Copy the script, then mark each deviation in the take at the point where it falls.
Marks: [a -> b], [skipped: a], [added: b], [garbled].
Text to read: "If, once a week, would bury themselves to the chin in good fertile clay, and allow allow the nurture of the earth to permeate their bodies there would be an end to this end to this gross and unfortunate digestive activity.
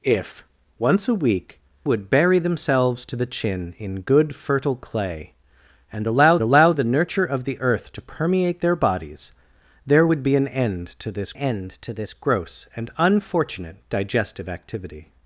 "If, once a week, would bury themselves to the chin in good fertile clay, and allow allow the nurture of the earth to permeate their bodies there would be an end to this end to this gross and unfortunate digestive activity.